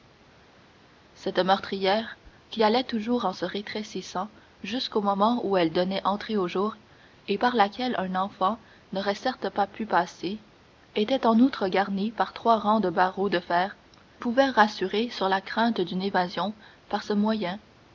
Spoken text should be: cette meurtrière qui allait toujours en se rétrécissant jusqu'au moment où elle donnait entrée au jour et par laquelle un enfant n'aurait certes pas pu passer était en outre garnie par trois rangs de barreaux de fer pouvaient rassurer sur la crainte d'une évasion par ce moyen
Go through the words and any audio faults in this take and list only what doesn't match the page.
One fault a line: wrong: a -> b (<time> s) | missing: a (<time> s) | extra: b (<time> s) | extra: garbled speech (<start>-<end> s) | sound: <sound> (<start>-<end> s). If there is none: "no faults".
no faults